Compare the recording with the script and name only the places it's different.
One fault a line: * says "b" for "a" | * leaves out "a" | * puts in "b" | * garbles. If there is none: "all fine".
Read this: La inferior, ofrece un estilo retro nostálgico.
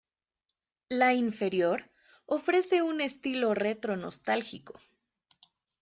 all fine